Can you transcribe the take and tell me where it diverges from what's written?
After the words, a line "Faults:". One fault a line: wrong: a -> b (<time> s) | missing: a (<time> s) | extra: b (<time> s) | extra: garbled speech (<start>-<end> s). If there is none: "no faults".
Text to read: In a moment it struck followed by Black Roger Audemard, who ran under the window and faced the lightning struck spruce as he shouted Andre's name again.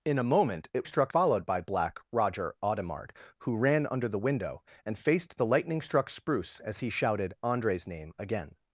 In a moment it struck followed by Black Roger Audemard, who ran under the window and faced the lightning struck spruce as he shouted Andre's name again.
Faults:
no faults